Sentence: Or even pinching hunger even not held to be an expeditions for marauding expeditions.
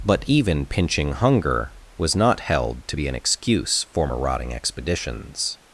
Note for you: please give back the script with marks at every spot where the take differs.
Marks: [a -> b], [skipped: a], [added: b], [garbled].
[Or -> But] even pinching hunger [even -> was] not held to be an [expeditions -> excuse] for marauding expeditions.